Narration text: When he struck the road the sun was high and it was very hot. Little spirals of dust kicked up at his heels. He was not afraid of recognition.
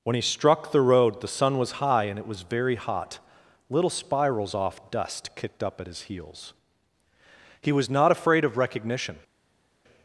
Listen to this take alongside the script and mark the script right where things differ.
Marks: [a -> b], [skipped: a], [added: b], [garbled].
When he struck the road the sun was high and it was very hot. Little spirals [of -> off] dust kicked up at his heels. He was not afraid of recognition.